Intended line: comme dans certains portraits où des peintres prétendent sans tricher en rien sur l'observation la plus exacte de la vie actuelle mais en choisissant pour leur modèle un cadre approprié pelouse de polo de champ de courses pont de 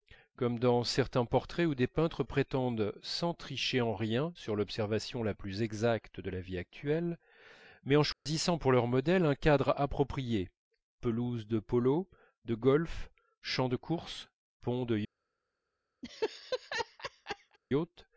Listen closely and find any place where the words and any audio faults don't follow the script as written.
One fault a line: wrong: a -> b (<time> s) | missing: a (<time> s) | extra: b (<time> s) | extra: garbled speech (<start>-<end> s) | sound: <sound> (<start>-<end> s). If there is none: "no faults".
sound: dropout (8.1-8.3 s)
extra: golf (12.6 s)
sound: laugh (16.0-17.6 s)